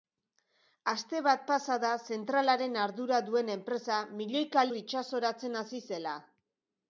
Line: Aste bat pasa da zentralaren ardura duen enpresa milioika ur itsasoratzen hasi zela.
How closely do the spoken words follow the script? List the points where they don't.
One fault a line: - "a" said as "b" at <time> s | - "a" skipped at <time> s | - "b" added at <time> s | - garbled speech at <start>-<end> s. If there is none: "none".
none